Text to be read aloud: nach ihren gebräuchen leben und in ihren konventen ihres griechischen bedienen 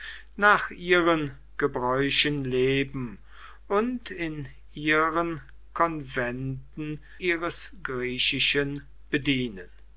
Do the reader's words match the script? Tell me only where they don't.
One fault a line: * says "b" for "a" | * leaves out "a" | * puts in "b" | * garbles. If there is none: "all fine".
all fine